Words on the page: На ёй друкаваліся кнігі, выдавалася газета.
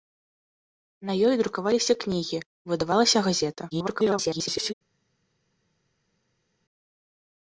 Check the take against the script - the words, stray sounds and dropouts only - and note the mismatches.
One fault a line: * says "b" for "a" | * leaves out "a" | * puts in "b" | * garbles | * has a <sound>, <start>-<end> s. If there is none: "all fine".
* garbles